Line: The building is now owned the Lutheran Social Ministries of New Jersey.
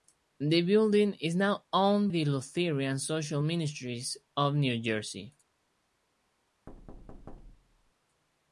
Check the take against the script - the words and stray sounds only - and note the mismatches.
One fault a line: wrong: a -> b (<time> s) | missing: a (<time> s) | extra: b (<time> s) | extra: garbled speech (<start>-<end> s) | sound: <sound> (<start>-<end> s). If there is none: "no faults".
sound: thud (6.7-7.9 s)